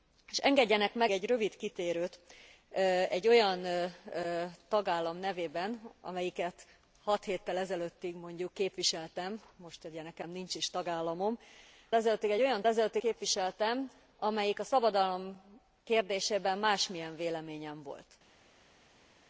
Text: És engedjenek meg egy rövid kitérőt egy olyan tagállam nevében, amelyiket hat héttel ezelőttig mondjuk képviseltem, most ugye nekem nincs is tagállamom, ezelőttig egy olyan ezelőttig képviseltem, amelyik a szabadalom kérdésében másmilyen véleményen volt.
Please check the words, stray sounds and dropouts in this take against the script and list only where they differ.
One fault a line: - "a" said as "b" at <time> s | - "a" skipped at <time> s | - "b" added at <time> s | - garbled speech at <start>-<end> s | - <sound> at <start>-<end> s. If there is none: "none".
none